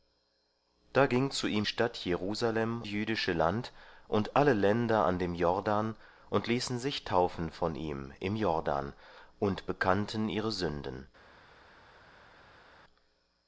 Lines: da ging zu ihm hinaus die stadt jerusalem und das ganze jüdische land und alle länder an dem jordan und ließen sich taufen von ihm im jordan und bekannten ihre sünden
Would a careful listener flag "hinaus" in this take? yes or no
yes